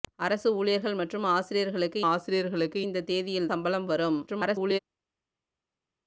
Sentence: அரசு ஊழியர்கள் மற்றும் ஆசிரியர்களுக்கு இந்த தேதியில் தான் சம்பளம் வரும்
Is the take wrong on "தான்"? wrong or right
wrong